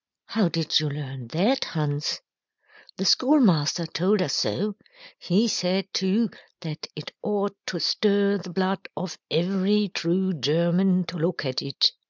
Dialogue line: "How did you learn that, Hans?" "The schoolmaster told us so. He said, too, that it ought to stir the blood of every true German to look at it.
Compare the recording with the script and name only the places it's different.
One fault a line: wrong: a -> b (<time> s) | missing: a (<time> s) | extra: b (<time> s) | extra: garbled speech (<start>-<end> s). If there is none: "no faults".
no faults